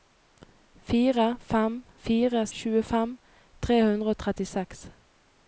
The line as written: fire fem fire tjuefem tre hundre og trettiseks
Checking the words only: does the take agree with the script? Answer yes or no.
yes